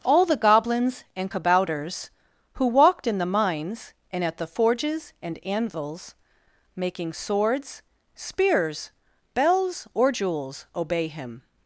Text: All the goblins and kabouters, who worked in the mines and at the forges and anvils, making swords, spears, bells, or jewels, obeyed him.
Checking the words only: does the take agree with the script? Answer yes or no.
no